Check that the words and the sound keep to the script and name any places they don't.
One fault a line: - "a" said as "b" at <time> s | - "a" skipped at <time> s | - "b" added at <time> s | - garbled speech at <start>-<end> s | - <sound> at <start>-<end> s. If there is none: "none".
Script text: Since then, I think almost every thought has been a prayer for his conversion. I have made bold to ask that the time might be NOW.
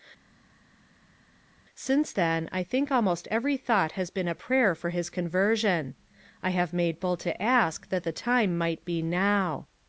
none